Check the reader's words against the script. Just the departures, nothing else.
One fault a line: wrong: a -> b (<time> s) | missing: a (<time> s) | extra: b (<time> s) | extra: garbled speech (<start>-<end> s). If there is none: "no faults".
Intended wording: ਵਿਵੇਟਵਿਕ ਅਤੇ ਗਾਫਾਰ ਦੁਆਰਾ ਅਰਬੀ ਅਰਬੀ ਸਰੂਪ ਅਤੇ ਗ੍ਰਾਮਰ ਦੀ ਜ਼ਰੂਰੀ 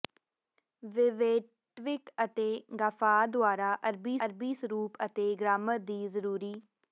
no faults